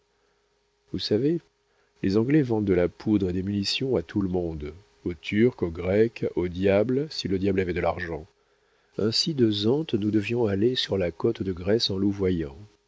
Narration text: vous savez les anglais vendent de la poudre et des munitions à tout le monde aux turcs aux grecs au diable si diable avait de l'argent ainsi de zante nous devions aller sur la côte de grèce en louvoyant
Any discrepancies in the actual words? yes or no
yes